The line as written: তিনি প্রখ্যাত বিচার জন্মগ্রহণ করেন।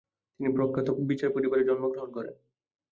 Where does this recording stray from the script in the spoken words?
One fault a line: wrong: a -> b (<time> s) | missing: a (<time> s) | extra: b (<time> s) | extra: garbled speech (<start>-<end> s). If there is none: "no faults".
extra: পরিবারে (1.4 s)